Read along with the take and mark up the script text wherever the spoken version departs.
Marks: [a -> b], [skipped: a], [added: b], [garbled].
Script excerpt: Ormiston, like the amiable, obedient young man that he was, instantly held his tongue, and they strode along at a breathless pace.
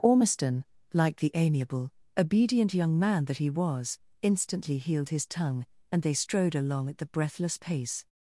Ormiston, like the amiable, obedient young man that he was, instantly [held -> healed] his tongue, and they strode along at [a -> the] breathless pace.